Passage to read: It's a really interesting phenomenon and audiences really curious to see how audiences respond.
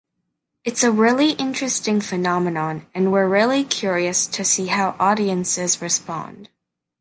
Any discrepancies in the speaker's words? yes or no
yes